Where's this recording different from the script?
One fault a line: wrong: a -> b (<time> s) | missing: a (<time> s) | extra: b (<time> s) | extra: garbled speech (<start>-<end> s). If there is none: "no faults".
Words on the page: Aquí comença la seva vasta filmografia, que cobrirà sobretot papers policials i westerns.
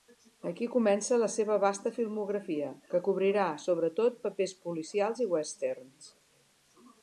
no faults